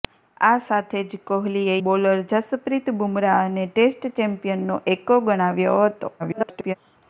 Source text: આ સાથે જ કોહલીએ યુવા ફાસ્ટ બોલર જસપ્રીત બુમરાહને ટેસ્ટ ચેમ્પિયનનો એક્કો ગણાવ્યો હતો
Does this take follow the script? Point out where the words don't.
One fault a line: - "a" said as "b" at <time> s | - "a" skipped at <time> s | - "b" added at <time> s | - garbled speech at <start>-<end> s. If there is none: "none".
- "યુવા ફાસ્ટ" skipped at 1.8 s
- garbled speech at 6.2-6.8 s